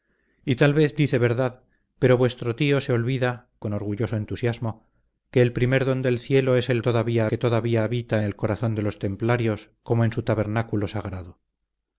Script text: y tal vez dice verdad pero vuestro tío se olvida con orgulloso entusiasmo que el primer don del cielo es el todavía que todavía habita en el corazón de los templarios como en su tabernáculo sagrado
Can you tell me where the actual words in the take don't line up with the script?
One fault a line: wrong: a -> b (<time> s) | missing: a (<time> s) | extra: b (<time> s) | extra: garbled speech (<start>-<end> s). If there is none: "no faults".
no faults